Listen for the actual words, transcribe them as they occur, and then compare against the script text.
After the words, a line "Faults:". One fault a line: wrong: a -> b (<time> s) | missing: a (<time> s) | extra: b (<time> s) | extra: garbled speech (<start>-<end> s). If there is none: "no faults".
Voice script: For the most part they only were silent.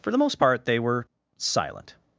For the most part they were silent.
Faults:
missing: only (0.8 s)